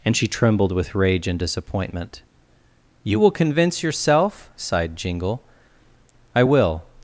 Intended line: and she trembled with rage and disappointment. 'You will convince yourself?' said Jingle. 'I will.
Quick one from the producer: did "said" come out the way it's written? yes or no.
no